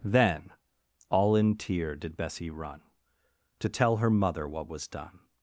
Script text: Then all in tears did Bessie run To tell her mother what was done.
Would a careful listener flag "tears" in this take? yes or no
yes